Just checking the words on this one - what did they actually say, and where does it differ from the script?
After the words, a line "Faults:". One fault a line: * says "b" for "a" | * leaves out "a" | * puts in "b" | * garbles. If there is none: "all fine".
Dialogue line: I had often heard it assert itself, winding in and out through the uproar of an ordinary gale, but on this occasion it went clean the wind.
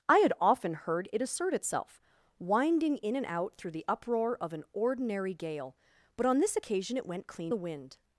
I had often heard it assert itself, winding in and out through the uproar of an ordinary gale, but on this occasion it went clean the wind.
Faults:
all fine